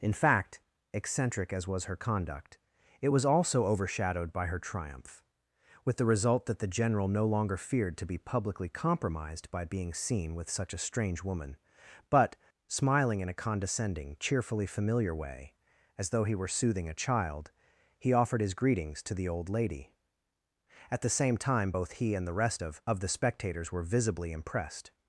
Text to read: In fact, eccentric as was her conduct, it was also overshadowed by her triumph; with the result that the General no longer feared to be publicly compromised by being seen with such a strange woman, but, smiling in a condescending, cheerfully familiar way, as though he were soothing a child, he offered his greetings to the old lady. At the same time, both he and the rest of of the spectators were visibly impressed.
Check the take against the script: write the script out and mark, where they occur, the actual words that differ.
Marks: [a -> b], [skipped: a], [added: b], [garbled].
In fact, eccentric as was her conduct, it was also overshadowed by her triumph; with the result that the General no longer feared to be publicly compromised by being seen with such a strange woman, but, smiling in a condescending, cheerfully familiar way, as though he were soothing a child, he offered his greetings to the old lady. At the same time, both he and the rest of of the spectators were visibly impressed.